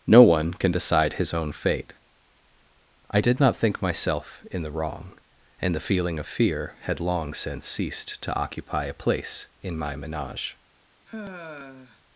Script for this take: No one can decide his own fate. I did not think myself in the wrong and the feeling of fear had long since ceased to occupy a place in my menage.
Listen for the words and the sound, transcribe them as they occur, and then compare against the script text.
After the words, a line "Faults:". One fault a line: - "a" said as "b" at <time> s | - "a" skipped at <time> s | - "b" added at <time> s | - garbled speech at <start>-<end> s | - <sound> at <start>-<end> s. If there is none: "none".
No one can decide his own fate. I did not think myself in the wrong and the feeling of fear had long since ceased to occupy a place in my menage.
Faults:
- sigh at 11.1-12.0 s